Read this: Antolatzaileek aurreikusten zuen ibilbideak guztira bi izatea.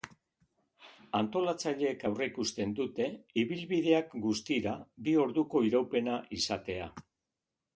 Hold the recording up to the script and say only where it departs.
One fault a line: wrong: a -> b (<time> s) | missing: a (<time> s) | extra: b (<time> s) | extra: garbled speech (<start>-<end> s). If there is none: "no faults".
wrong: zuen -> dute (2.8 s)
extra: orduko iraupena (5.3 s)